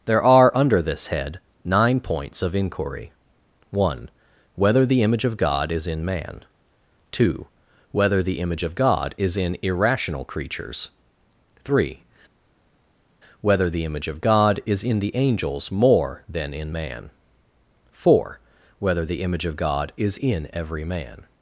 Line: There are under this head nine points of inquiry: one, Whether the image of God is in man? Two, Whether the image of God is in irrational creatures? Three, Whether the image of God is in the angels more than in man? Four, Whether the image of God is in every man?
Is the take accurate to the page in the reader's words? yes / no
yes